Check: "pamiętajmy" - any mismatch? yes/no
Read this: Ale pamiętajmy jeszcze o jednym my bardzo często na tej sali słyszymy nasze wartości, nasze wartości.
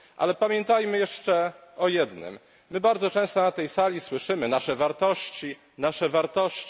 no